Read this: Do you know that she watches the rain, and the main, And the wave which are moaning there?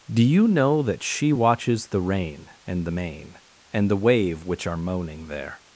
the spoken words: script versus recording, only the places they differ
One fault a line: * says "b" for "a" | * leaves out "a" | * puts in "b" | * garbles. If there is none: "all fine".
all fine